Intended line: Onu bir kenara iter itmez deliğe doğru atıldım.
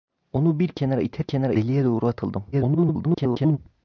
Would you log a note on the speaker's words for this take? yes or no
yes